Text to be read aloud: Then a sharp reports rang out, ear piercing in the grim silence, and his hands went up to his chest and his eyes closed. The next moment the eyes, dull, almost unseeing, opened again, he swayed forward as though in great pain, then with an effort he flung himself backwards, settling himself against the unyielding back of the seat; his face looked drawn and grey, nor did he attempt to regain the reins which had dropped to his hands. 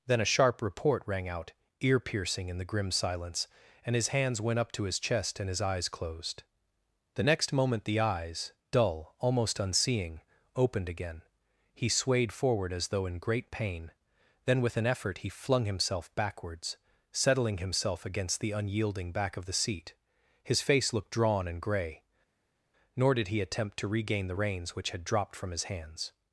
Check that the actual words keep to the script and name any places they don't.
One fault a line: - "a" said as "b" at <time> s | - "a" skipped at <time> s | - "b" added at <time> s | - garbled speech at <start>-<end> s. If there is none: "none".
- "reports" said as "report" at 0.6 s
- "to" said as "from" at 25.4 s